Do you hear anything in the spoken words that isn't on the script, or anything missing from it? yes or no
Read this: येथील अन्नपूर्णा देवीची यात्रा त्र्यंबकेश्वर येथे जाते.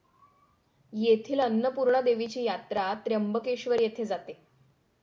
no